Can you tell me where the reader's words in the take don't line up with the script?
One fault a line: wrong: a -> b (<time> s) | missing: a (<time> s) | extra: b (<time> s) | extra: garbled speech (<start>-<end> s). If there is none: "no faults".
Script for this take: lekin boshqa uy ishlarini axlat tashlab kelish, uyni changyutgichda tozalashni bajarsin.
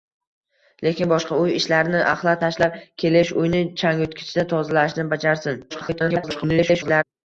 extra: garbled speech (5.7-7.0 s)